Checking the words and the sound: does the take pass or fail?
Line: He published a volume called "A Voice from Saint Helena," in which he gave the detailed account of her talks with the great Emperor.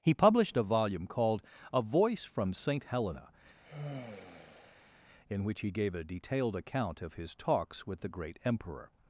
fail